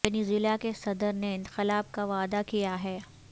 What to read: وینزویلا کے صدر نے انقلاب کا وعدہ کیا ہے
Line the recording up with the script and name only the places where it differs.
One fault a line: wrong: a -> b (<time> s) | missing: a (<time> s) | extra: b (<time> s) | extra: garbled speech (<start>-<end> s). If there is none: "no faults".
no faults